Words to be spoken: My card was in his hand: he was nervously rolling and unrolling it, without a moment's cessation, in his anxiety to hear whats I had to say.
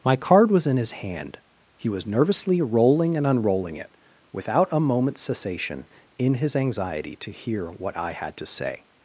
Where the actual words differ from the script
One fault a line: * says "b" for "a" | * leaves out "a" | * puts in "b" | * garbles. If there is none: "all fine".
* says "what" for "whats"